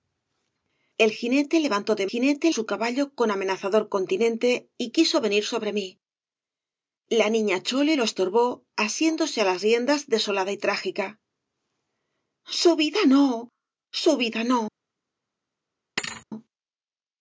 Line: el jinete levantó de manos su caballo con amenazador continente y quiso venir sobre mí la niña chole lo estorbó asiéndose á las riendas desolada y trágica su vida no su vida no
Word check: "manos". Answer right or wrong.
wrong